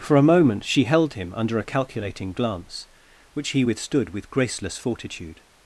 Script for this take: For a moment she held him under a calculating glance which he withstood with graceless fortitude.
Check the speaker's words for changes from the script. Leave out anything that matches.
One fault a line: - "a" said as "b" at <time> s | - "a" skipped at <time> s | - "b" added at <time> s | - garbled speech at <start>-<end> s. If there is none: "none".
none